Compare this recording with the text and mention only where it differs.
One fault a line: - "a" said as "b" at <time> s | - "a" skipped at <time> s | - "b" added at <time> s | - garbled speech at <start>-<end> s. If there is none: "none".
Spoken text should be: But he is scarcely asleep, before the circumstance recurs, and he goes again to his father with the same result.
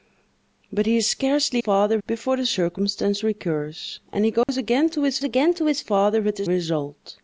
- "asleep" said as "father" at 1.6 s
- "again to his" added at 5.2 s
- "same" skipped at 6.5 s